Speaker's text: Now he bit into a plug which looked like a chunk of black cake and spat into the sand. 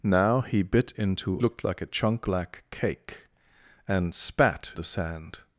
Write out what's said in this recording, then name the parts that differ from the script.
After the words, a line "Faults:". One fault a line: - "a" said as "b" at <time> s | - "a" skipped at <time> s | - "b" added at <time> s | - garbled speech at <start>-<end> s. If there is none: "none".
Now he bit into looked like a chunk black cake and spat the sand.
Faults:
- "a plug which" skipped at 1.4 s
- "of" skipped at 2.3 s
- "into" skipped at 4.7 s